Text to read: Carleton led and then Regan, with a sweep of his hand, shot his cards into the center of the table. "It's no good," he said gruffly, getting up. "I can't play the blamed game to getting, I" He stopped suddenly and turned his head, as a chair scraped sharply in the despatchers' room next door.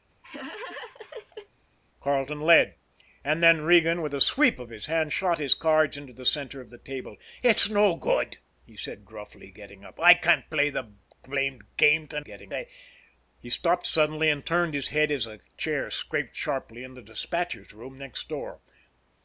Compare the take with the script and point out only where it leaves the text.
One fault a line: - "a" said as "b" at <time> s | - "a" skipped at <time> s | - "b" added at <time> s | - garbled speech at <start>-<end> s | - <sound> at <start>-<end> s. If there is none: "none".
- laugh at 0.2-1.5 s